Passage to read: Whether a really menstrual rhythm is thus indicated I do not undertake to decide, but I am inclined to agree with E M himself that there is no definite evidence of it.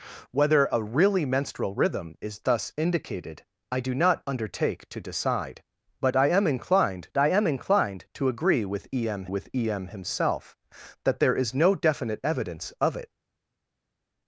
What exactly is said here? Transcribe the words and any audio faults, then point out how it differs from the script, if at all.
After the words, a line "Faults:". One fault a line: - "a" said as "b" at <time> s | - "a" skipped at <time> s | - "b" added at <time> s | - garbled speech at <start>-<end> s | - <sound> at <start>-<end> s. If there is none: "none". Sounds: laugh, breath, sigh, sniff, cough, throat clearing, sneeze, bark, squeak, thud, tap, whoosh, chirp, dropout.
Whether a really menstrual rhythm is thus indicated I do not undertake to decide, but I am inclined I am inclined to agree with E M with E M himself that there is no definite evidence of it.
Faults:
- "I am inclined" added at 7.2 s
- "with E M" added at 9.3 s